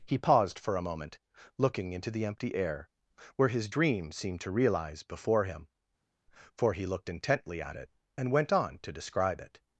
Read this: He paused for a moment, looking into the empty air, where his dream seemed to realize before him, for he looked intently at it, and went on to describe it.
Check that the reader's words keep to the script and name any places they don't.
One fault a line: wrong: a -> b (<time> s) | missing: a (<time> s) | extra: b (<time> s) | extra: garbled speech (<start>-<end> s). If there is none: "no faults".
no faults